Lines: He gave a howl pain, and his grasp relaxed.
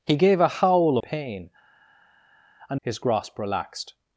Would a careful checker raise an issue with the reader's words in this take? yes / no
no